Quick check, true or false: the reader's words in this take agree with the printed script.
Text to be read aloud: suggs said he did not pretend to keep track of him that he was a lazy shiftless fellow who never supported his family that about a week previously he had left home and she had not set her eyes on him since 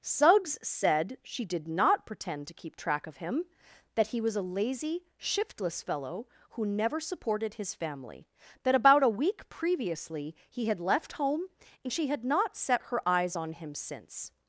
false